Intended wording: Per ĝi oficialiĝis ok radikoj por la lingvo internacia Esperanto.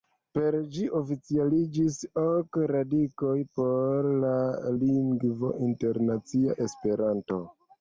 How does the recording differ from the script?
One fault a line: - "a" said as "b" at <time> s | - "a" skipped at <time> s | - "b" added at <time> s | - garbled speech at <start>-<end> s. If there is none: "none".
none